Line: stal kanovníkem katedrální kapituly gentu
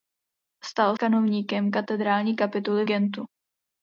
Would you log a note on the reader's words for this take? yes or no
no